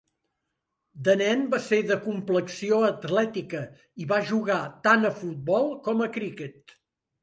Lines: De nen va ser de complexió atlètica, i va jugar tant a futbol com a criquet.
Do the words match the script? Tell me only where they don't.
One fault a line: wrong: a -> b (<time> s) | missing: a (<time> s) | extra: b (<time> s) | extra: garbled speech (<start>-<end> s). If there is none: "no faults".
no faults